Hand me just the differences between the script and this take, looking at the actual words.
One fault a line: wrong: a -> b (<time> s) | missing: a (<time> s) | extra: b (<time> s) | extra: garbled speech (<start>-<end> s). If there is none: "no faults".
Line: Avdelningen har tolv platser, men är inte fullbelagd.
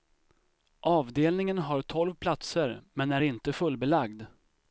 no faults